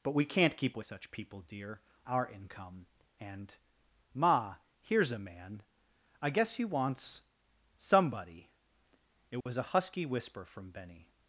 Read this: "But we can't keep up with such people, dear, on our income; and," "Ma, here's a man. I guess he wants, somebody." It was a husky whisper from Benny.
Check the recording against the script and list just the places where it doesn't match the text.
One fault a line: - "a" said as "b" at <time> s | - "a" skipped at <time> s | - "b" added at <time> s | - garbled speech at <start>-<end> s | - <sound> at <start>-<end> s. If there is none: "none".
- "up" skipped at 0.8 s
- "on" skipped at 1.8 s
- dropout at 9.4-9.5 s